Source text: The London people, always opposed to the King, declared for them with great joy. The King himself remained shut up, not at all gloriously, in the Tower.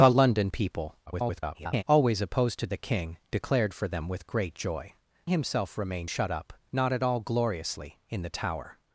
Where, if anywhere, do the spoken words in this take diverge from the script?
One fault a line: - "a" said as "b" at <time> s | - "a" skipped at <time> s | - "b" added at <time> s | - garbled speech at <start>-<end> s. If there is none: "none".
- garbled speech at 1.1-1.8 s
- "The King" skipped at 4.9 s